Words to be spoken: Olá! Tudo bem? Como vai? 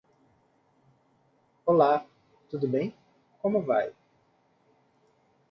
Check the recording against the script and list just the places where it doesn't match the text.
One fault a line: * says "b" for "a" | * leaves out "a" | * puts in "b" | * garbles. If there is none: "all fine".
all fine